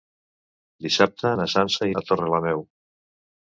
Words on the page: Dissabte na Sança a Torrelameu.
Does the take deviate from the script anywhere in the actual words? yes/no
no